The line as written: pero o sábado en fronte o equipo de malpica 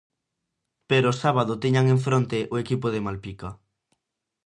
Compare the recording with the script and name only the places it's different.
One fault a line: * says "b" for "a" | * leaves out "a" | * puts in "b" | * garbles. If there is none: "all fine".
* puts in "tiñan"